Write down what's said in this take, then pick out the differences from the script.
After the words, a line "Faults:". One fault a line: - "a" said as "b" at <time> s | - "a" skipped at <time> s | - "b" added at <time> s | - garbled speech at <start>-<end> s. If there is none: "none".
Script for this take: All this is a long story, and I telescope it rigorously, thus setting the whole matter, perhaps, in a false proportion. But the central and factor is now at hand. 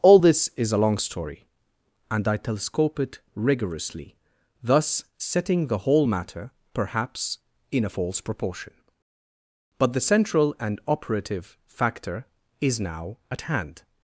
All this is a long story, and I telescope it rigorously, thus setting the whole matter, perhaps, in a false proportion. But the central and operative factor is now at hand.
Faults:
- "operative" added at 10.8 s